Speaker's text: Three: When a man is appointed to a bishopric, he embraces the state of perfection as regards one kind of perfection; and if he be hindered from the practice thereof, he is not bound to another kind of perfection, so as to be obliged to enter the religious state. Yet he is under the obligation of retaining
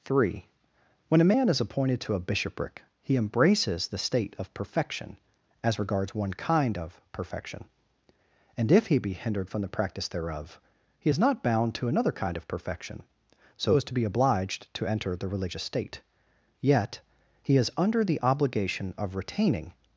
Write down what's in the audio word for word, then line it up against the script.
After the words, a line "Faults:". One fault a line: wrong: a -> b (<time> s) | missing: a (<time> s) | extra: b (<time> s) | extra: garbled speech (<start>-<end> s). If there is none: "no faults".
Three: When a man is appointed to a bishopric, he embraces the state of perfection as regards one kind of perfection; and if he be hindered from the practice thereof, he is not bound to another kind of perfection, so as to be obliged to enter the religious state. Yet he is under the obligation of retaining
Faults:
no faults